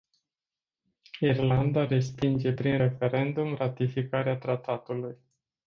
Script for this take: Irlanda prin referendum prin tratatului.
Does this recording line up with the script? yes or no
no